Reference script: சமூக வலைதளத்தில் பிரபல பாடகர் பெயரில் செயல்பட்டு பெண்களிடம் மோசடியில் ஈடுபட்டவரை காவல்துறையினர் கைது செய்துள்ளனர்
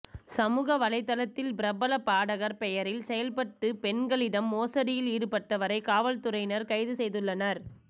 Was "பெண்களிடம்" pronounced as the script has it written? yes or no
yes